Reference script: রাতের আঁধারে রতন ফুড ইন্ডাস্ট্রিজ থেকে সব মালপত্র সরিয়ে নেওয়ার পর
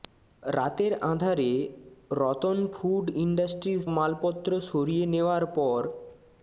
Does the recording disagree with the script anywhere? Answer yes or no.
yes